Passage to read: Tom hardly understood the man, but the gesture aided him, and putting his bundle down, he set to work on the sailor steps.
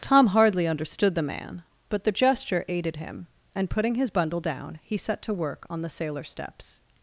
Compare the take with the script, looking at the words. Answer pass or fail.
pass